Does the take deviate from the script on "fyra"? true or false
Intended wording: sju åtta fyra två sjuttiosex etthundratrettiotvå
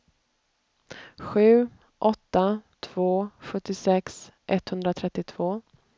true